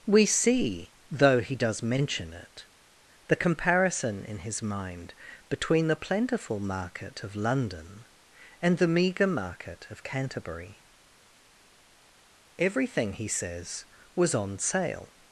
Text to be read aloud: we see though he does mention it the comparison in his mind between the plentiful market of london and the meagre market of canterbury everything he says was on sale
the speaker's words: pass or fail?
pass